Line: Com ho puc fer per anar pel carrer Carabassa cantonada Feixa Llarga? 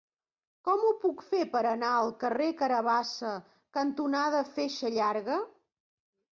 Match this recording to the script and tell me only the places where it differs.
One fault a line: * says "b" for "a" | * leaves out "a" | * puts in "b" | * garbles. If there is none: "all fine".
* says "al" for "pel"